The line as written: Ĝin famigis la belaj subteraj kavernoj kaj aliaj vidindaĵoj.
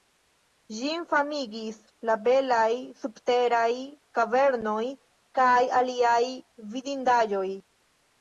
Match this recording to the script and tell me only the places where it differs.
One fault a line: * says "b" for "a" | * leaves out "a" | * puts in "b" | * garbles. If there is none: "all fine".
all fine